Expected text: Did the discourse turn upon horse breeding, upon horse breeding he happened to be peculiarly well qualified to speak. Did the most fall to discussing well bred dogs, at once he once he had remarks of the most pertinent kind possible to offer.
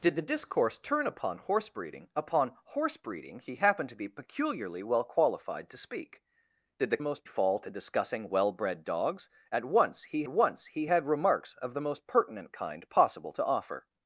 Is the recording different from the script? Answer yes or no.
no